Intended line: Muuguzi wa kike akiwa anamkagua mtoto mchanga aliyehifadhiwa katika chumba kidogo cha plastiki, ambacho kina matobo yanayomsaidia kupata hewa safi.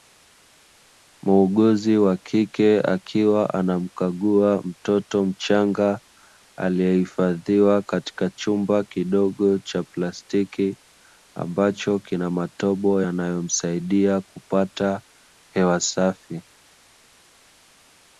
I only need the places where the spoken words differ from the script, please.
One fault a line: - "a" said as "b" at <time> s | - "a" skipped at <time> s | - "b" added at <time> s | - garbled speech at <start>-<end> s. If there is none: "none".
none